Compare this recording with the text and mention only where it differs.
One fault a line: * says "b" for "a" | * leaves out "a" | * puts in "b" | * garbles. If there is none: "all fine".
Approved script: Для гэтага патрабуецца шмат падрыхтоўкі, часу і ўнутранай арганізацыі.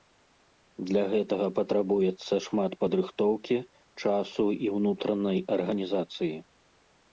all fine